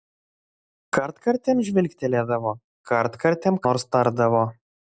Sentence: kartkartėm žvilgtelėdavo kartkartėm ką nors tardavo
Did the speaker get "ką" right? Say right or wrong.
wrong